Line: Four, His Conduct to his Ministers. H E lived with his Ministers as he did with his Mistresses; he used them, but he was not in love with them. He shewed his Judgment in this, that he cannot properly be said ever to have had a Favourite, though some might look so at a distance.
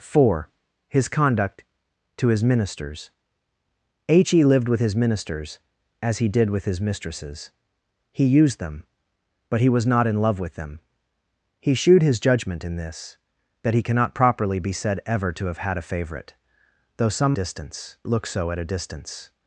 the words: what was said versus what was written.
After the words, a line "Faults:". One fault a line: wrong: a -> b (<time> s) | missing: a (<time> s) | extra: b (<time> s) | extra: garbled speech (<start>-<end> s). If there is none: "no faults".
Four, His Conduct to his Ministers. H E lived with his Ministers as he did with his Mistresses; he used them, but he was not in love with them. He shewed his Judgment in this, that he cannot properly be said ever to have had a Favourite, though some distance look so at a distance.
Faults:
wrong: might -> distance (17.3 s)